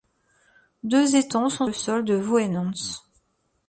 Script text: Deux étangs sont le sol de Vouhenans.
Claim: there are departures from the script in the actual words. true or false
false